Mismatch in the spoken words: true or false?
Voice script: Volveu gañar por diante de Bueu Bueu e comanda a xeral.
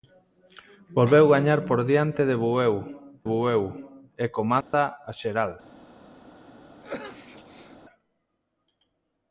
false